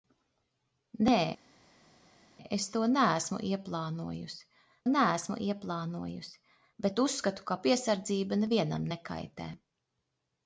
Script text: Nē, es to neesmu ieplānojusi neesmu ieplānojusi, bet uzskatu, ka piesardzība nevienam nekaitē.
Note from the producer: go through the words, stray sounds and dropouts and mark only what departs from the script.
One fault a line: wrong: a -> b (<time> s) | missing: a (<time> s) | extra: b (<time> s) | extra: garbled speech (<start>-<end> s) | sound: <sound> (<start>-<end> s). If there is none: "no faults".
no faults